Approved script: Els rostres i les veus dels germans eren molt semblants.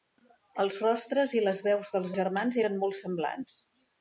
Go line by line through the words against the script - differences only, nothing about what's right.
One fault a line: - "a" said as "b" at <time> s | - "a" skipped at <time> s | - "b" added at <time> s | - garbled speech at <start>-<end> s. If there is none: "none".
none